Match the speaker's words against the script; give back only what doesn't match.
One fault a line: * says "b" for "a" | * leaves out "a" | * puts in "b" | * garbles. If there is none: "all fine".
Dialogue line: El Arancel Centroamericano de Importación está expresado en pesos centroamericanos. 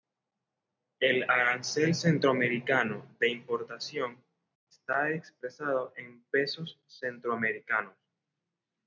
all fine